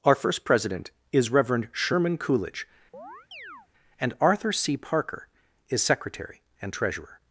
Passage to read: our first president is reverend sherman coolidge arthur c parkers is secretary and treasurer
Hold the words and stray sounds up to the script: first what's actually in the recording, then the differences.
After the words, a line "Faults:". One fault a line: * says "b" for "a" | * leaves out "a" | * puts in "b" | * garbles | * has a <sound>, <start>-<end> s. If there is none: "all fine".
our first president is reverend sherman coolidge and arthur c parker is secretary and treasurer
Faults:
* has a chirp, 2.9-3.7 s
* puts in "and"
* says "parker" for "parkers"